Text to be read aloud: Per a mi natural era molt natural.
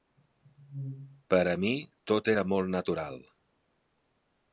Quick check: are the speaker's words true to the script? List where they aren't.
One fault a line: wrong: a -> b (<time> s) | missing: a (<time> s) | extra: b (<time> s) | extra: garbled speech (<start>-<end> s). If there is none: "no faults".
wrong: natural -> tot (2.1 s)